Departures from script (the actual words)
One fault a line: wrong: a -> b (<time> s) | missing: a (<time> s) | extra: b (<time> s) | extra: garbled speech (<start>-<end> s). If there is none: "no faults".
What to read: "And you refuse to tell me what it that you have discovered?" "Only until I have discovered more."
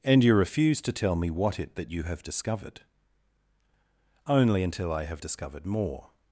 no faults